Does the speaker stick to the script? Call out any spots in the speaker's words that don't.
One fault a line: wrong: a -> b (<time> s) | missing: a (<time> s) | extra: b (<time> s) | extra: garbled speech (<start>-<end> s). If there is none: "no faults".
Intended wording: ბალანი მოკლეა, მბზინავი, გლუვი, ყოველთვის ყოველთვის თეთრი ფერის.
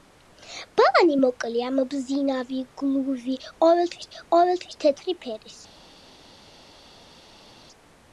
no faults